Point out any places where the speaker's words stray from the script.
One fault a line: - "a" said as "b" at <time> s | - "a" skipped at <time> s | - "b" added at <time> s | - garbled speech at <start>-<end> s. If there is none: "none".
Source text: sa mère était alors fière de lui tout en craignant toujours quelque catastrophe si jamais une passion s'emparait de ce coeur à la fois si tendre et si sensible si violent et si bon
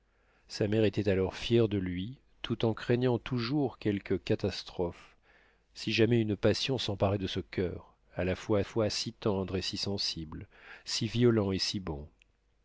- "fois" added at 8.6 s